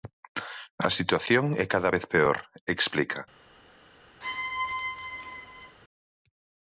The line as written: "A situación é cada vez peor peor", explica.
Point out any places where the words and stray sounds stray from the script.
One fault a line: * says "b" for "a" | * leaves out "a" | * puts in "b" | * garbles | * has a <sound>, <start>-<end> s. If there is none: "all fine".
* leaves out "peor"
* has a squeak, 4.2-5.8 s